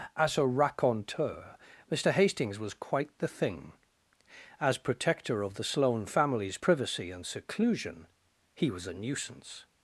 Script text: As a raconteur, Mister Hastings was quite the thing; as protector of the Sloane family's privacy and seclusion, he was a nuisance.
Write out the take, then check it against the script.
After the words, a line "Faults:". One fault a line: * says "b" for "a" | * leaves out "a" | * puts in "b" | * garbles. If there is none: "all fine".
As a raconteur, Mister Hastings was quite the thing; as protector of the Sloane family's privacy and seclusion, he was a nuisance.
Faults:
all fine